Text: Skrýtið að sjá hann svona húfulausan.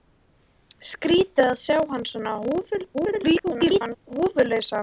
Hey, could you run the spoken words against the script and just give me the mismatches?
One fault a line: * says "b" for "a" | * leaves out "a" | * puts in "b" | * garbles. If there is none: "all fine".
* garbles